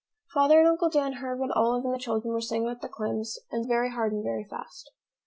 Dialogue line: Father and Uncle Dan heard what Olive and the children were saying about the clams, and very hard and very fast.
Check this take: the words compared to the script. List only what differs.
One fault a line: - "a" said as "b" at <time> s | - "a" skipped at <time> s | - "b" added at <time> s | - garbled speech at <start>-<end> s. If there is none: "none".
none